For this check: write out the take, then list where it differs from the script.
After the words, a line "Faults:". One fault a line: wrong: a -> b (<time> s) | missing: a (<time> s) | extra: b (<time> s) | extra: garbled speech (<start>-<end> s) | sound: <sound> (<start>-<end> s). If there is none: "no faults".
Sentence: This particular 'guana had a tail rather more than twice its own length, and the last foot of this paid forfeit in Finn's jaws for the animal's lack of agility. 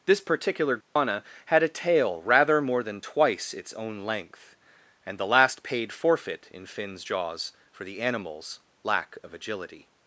This particular 'guana had a tail rather more than twice its own length, and the last paid forfeit in Finn's jaws for the animal's lack of agility.
Faults:
sound: dropout (0.8-1.0 s)
missing: foot of this (5.6 s)